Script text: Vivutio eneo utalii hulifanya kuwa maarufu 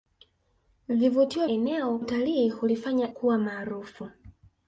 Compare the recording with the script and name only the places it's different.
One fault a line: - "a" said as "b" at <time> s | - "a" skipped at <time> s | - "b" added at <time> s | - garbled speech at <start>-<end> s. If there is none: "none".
none